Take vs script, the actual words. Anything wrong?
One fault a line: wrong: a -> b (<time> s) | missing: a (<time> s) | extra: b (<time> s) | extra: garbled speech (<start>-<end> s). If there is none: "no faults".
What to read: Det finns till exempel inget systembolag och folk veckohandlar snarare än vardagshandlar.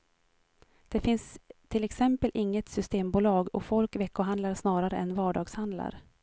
no faults